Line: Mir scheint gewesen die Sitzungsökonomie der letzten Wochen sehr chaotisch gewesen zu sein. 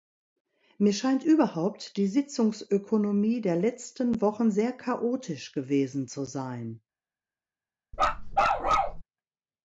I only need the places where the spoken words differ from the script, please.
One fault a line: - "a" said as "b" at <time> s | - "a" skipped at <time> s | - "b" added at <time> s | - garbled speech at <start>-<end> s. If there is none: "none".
- "gewesen" said as "überhaupt" at 1.2 s